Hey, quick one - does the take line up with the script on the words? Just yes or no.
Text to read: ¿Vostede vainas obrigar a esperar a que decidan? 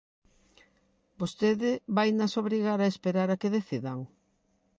yes